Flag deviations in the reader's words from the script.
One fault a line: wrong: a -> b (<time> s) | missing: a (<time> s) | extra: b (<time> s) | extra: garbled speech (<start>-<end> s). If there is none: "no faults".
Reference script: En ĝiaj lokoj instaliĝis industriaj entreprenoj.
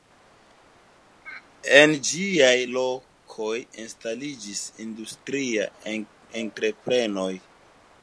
no faults